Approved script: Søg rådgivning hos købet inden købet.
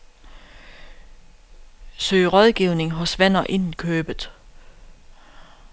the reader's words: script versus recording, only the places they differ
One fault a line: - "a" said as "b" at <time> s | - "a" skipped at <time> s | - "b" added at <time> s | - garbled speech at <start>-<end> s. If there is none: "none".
- "købet" said as "venner" at 3.2 s